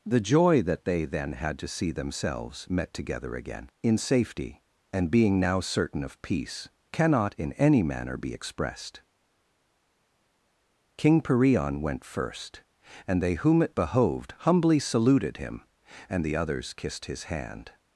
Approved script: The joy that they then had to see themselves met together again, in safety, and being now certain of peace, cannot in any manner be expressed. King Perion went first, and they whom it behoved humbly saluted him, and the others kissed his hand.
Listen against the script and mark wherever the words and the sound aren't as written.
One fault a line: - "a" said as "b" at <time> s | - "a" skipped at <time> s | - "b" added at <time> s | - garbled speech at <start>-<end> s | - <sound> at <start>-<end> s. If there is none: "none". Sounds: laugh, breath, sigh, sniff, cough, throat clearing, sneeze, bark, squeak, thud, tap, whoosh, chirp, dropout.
none